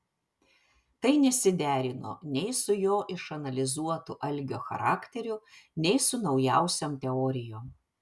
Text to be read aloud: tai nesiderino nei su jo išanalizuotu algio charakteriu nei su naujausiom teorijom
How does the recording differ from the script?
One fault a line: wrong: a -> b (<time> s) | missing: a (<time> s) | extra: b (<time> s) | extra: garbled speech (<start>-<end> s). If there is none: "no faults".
no faults